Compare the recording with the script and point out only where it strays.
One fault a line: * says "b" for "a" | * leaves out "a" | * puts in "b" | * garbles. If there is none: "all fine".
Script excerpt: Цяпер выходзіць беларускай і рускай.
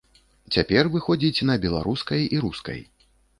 * puts in "на"